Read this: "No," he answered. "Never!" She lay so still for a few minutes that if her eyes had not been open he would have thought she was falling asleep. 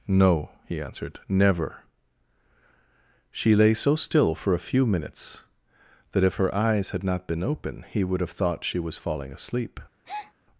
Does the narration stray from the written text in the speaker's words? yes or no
no